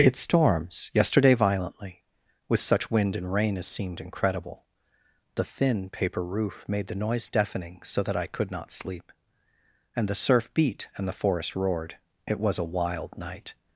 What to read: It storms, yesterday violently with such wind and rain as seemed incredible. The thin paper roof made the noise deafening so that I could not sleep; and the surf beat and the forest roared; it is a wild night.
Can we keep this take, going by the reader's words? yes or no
no